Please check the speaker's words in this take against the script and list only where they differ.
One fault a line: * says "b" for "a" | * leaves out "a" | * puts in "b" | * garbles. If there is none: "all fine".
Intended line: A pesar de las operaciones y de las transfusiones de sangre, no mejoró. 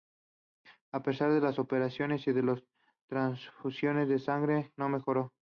all fine